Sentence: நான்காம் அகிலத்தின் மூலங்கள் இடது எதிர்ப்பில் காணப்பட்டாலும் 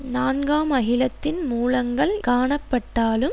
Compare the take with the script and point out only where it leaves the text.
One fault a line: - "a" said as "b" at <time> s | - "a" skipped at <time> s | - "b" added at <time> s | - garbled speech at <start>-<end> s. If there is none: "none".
- "இடது எதிர்ப்பில்" skipped at 2.2 s